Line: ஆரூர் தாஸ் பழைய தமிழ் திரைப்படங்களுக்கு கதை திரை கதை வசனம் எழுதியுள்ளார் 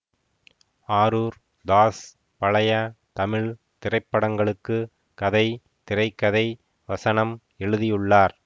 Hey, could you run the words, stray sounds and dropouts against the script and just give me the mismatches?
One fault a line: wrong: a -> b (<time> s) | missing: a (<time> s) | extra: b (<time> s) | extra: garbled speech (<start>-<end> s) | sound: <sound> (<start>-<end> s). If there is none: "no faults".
no faults